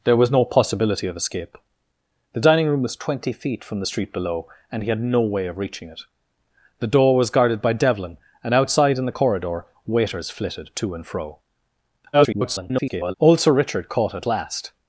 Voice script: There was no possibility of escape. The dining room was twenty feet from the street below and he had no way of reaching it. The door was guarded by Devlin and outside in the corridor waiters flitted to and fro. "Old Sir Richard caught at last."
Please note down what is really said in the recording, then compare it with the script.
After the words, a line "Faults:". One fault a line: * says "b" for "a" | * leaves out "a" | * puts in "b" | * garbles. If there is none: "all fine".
There was no possibility of escape. The dining room was twenty feet from the street below and he had no way of reaching it. The door was guarded by Devlin and outside in the corridor waiters flitted to and fro. [garbled] "Old Sir Richard caught at last."
Faults:
* garbles